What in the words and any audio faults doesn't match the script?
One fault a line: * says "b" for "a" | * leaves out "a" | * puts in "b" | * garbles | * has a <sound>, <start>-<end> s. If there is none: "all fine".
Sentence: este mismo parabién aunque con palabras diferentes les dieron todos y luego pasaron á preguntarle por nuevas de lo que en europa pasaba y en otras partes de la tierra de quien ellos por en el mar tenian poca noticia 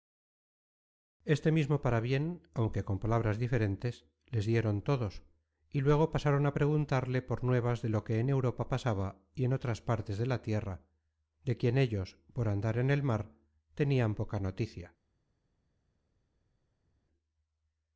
* puts in "andar"